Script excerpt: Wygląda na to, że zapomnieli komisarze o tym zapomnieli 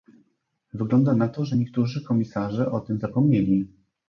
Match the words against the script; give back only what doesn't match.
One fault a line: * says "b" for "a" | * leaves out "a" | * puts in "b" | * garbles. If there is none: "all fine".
* says "niektórzy" for "zapomnieli"